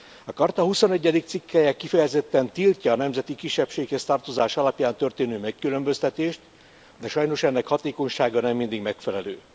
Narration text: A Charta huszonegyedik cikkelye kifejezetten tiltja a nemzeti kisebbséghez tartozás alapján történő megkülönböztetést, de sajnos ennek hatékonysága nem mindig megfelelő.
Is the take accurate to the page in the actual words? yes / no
yes